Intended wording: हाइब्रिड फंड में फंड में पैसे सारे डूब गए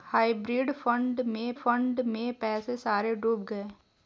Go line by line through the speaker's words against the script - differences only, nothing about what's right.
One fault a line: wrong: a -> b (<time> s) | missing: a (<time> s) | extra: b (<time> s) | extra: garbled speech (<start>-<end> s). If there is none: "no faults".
no faults